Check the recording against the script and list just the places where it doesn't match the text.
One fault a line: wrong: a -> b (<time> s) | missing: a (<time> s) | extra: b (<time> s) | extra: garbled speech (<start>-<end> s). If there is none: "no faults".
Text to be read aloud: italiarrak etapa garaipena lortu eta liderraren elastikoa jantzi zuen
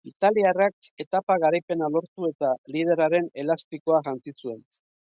no faults